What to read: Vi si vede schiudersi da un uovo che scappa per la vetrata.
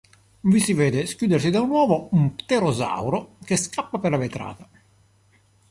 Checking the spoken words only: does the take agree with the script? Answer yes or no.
no